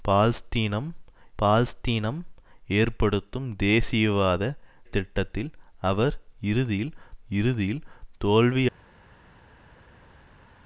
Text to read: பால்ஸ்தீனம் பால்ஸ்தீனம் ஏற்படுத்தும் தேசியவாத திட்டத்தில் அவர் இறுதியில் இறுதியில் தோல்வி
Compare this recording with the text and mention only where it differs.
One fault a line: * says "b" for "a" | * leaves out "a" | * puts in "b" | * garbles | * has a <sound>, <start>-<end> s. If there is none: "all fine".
all fine